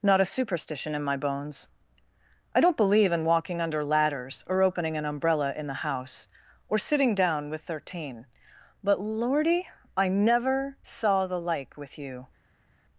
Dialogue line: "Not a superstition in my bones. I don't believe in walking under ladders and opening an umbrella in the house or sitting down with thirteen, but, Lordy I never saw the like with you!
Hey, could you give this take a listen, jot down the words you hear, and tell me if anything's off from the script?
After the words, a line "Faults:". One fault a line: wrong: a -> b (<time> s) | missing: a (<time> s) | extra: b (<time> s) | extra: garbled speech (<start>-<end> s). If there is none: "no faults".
"Not a superstition in my bones. I don't believe in walking under ladders or opening an umbrella in the house or sitting down with thirteen, but, Lordy I never saw the like with you!
Faults:
wrong: and -> or (4.5 s)